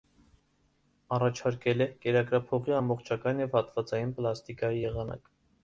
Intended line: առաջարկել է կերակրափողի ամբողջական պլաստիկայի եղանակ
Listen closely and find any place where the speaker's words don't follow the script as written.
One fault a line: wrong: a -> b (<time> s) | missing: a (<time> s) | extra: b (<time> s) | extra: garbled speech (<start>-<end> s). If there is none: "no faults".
extra: և հատվածային (3.4 s)